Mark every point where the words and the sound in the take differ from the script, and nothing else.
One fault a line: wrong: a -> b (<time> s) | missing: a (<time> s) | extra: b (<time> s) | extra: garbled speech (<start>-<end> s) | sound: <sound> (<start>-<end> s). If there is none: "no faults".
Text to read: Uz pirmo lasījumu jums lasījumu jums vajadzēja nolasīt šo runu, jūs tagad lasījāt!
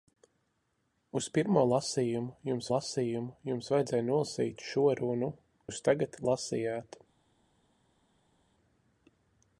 no faults